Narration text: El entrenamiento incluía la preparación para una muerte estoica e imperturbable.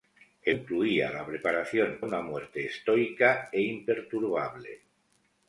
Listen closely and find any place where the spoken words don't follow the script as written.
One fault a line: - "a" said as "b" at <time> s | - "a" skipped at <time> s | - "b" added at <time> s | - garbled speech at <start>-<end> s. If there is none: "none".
- "entrenamiento" skipped at 0.6 s
- "para" skipped at 2.0 s